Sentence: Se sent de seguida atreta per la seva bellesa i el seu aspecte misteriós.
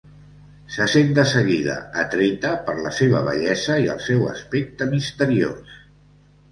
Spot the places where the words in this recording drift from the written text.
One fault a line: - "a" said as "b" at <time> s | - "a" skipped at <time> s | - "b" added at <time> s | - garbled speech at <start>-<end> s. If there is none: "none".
none